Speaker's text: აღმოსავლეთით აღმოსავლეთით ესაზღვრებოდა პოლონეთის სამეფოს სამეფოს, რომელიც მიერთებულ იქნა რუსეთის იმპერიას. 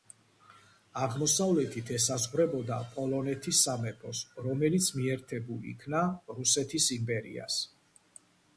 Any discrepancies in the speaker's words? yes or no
yes